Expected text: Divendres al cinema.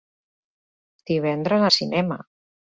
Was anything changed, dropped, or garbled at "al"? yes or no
no